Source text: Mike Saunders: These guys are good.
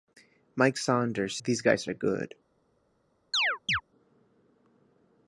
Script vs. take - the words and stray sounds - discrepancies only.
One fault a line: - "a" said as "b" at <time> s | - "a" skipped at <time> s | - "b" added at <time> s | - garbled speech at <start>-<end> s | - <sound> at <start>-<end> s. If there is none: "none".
- chirp at 3.3-3.8 s